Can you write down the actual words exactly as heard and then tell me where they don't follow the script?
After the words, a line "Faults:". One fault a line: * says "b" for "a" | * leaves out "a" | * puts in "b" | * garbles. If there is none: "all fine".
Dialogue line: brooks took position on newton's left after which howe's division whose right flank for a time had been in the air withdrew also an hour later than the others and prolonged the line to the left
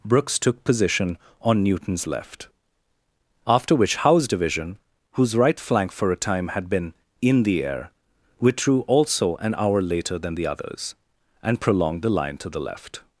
brooks took position on newton's left after which howe's division whose right flank for a time had been in the air withdrew also an hour later than the others and prolonged the line to the left
Faults:
all fine